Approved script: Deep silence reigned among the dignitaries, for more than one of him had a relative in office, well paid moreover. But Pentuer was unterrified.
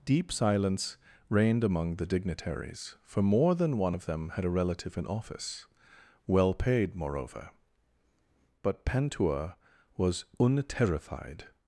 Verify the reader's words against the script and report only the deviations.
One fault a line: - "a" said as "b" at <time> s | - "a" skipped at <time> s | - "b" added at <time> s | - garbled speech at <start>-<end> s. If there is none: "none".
- "him" said as "them" at 4.0 s